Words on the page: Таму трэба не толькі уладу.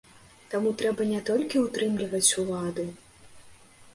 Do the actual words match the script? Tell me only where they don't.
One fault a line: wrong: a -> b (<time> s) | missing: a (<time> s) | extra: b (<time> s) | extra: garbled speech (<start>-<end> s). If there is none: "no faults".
extra: ўтрымліваць (1.6 s)